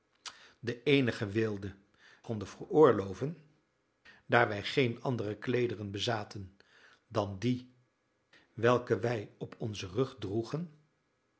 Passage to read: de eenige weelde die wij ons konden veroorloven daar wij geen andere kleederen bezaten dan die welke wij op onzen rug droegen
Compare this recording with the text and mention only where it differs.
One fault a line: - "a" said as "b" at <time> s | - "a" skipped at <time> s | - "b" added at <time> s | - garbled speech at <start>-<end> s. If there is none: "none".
- "die wij ons" skipped at 1.8 s